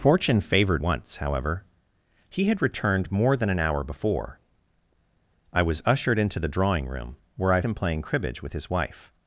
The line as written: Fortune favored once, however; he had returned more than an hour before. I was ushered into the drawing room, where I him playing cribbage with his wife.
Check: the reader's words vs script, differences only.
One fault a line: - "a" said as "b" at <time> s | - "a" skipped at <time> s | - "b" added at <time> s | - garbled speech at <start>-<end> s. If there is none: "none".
none